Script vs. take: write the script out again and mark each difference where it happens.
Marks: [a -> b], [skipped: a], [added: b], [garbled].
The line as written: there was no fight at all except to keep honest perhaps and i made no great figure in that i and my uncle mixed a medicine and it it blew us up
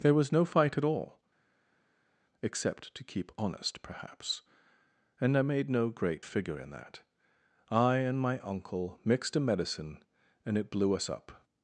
there was no fight at all except to keep honest perhaps and i made no great figure in that i and my uncle mixed a medicine and it [skipped: it] blew us up